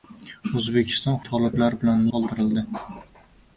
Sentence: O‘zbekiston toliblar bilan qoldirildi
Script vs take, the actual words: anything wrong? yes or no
no